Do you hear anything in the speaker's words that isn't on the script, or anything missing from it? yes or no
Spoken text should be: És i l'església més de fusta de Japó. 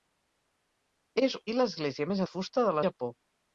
no